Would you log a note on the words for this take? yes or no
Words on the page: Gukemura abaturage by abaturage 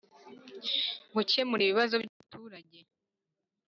yes